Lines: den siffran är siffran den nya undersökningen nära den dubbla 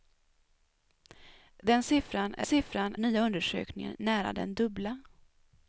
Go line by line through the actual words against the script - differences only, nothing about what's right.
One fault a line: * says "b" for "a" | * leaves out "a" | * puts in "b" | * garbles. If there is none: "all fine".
all fine